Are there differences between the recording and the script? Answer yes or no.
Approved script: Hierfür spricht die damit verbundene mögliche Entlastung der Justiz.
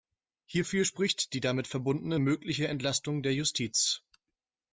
no